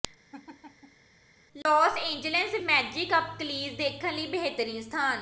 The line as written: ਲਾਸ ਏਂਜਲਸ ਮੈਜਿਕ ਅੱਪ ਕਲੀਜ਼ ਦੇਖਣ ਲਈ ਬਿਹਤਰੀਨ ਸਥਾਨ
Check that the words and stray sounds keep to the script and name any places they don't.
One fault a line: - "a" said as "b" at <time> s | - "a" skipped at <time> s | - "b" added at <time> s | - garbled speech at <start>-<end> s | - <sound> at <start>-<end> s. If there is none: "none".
- laugh at 0.3-1.1 s